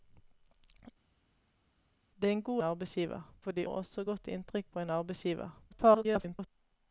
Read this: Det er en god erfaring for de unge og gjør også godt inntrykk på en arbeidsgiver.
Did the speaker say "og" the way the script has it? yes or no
no